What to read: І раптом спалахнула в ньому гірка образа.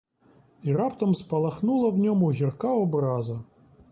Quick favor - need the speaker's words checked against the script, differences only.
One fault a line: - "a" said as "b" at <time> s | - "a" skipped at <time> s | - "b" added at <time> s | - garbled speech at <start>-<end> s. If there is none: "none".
none